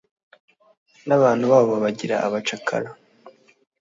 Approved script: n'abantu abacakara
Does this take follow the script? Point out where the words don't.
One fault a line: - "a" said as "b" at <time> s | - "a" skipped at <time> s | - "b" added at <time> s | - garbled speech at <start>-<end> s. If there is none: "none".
- "babo babagira" added at 1.5 s